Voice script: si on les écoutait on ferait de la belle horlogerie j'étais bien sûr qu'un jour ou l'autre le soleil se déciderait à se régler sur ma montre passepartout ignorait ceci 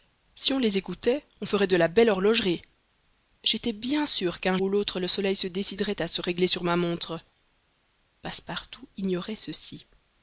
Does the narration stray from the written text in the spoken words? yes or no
yes